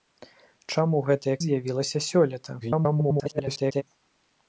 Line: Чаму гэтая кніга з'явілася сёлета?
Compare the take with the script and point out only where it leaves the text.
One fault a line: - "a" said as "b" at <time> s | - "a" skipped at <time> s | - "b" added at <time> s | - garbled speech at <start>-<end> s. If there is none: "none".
- "кніга" skipped at 1.4 s
- garbled speech at 2.6-3.8 s